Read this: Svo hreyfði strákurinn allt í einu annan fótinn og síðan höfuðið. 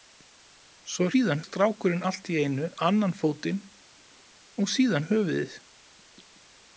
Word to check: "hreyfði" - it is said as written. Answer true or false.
false